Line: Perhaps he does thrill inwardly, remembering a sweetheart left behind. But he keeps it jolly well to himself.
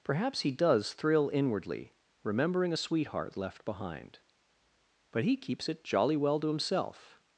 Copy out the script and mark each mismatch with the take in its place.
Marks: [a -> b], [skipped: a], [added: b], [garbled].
Perhaps he does thrill inwardly, remembering a sweetheart left behind. But he keeps it jolly well to himself.